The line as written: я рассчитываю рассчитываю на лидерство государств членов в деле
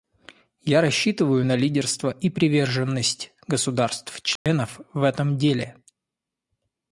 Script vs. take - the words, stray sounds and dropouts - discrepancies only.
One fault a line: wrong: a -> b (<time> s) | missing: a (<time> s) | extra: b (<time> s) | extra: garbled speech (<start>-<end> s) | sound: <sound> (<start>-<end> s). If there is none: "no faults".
missing: рассчитываю (1.4 s)
extra: и приверженность (2.1 s)
sound: dropout (4.4-4.5 s)
extra: этом (5.0 s)